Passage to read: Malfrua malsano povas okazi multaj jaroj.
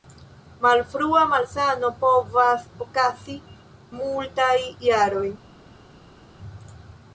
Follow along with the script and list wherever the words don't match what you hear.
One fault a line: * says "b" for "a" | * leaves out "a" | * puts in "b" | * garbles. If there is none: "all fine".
all fine